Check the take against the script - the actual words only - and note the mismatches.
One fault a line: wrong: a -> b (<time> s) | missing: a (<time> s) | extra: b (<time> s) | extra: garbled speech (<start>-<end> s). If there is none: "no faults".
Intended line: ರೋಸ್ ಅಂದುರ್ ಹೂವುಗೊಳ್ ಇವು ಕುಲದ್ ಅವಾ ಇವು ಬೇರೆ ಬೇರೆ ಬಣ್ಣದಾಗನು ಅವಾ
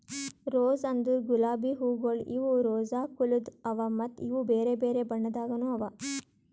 extra: ಗುಲಾಬಿ (1.3 s)
extra: ರೋಸಾ (2.6 s)
extra: ಮತ್ತ (4.0 s)